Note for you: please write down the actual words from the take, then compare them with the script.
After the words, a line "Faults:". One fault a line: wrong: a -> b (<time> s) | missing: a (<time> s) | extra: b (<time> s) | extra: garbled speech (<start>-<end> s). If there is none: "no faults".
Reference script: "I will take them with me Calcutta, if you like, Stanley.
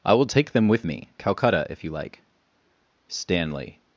"I will take them with me Calcutta, if you like, Stanley.
Faults:
no faults